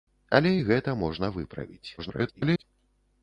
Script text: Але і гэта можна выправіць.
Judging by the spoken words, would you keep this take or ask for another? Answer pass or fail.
fail